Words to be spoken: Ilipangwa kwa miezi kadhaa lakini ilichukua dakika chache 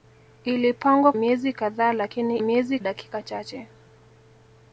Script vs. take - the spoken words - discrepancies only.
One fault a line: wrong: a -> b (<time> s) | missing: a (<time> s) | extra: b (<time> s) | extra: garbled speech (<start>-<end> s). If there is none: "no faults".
missing: kwa (1.1 s)
wrong: ilichukua -> miezi (2.4 s)